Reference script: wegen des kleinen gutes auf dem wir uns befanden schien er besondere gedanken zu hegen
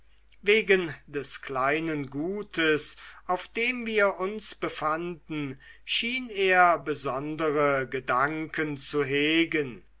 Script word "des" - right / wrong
right